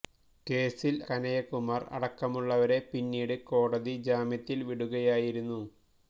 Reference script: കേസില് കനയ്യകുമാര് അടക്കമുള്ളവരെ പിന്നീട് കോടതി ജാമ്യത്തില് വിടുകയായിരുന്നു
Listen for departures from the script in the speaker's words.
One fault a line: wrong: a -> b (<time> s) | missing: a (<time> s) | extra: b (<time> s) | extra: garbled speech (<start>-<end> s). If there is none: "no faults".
no faults